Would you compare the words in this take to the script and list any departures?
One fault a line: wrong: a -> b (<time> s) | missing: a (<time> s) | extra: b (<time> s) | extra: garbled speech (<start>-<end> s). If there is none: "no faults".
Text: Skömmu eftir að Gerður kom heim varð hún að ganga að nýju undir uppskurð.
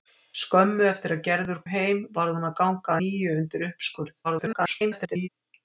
missing: kom (1.6 s)
missing: að (3.0 s)
extra: garbled speech (4.2-5.3 s)